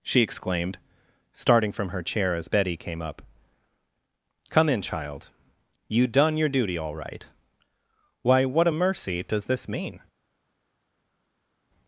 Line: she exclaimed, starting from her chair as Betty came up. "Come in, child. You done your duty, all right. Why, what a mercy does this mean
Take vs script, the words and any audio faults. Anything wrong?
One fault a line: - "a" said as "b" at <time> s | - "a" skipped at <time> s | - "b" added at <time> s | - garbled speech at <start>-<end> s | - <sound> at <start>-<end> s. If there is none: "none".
none